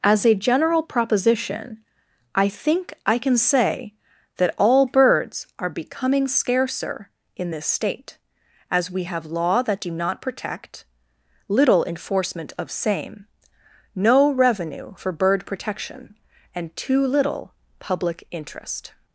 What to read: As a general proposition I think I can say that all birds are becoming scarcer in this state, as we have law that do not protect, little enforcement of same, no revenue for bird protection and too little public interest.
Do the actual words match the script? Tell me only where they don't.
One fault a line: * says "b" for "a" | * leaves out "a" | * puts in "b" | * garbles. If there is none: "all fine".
all fine